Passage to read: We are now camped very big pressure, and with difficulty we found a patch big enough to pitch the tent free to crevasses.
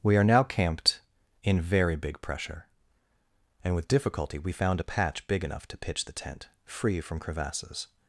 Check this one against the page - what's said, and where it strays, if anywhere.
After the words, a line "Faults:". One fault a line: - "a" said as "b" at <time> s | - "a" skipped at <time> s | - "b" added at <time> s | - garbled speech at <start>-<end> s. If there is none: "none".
We are now camped in very big pressure, and with difficulty we found a patch big enough to pitch the tent free from crevasses.
Faults:
- "in" added at 1.4 s
- "to" said as "from" at 7.0 s